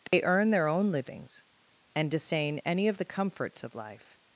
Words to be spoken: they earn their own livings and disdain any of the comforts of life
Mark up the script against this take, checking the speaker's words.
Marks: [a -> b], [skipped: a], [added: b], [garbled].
they earn their own livings and disdain any of the comforts of life